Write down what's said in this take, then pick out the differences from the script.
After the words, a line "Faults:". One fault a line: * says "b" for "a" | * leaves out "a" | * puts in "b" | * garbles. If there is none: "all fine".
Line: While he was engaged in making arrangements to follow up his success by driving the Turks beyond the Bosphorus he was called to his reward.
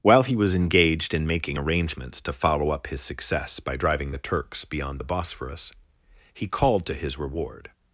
While he was engaged in making arrangements to follow up his success by driving the Turks beyond the Bosphorus he called to his reward.
Faults:
* leaves out "was"